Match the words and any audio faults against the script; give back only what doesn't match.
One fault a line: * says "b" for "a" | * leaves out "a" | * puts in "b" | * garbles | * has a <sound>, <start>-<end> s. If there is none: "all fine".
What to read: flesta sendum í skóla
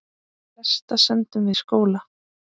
all fine